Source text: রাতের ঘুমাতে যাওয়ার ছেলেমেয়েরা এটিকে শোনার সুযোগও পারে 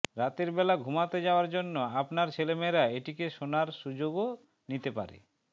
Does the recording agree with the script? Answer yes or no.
no